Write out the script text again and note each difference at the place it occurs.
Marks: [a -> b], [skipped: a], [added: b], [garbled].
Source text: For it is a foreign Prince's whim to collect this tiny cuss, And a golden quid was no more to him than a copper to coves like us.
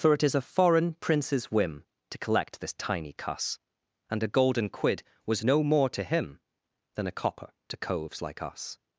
For it is a foreign Prince's whim to collect this tiny cuss, And a golden quid was no more to him than a copper to coves like us.